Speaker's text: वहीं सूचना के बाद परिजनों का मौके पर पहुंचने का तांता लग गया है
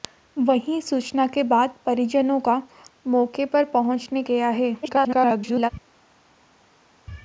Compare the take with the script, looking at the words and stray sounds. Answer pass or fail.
fail